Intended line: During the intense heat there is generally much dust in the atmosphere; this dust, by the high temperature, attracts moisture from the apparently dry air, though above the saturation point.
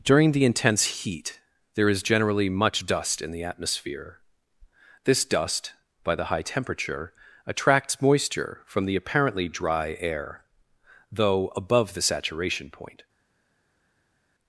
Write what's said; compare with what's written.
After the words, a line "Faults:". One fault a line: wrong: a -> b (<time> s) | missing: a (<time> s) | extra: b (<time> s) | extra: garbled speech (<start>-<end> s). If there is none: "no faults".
During the intense heat there is generally much dust in the atmosphere; this dust, by the high temperature, attracts moisture from the apparently dry air, though above the saturation point.
Faults:
no faults